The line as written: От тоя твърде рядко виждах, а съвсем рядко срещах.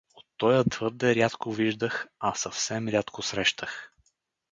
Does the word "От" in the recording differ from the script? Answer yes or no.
no